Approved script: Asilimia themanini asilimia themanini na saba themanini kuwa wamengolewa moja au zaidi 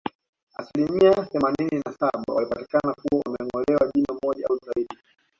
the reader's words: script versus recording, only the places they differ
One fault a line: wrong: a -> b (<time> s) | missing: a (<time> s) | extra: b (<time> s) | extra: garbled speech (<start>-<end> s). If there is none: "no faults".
missing: asilimia themanini (1.8 s)
wrong: themanini -> walipatikana (2.3 s)
extra: jino (4.0 s)